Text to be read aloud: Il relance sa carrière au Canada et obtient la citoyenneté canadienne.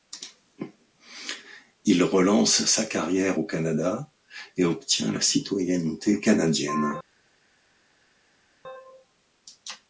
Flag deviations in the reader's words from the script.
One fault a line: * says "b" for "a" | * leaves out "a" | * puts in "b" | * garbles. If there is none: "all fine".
all fine